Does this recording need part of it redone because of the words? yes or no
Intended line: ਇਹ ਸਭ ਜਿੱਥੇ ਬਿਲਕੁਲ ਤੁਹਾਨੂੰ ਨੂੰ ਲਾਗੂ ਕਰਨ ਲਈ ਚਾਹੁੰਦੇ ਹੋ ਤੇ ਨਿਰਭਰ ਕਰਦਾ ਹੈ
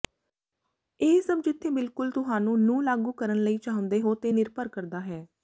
no